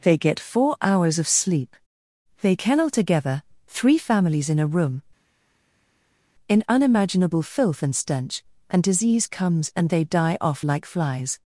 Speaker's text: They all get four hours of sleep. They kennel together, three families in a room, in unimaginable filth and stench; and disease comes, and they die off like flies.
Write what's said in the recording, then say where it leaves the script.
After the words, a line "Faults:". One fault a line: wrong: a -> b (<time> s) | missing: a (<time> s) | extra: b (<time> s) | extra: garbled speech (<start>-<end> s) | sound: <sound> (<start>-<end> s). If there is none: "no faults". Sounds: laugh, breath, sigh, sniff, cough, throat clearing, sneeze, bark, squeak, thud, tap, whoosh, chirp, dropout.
They get four hours of sleep. They kennel together, three families in a room, in unimaginable filth and stench; and disease comes, and they die off like flies.
Faults:
missing: all (0.2 s)